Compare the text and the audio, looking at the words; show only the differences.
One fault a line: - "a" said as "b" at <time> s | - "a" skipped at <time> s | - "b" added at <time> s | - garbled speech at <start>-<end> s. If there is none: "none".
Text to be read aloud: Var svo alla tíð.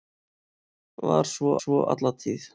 - "svo" added at 1.6 s